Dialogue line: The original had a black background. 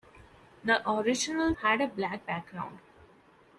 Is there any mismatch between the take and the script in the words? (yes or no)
no